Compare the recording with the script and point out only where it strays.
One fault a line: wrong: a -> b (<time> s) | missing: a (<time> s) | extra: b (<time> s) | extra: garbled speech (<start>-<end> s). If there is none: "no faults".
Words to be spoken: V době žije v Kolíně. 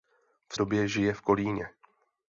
no faults